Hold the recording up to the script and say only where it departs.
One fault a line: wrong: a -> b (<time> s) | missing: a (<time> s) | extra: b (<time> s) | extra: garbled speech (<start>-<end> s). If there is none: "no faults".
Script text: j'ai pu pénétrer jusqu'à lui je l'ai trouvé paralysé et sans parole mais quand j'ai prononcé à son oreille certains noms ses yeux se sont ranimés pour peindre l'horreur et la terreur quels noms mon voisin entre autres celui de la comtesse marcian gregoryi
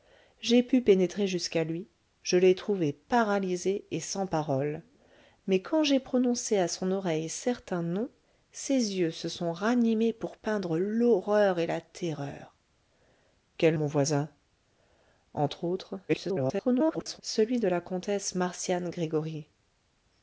missing: noms (13.8 s)
extra: garbled speech (16.1-17.2 s)